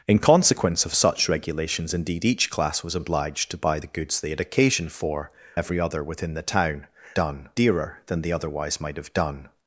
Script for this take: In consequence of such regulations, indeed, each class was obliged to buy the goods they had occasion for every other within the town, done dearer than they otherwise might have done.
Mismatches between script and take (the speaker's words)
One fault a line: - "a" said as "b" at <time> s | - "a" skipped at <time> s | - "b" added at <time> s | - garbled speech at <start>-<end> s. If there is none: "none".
none